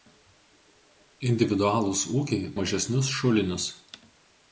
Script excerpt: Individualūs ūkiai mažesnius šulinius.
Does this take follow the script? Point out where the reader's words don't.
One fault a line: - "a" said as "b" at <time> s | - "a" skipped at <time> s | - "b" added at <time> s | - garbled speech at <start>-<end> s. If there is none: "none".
none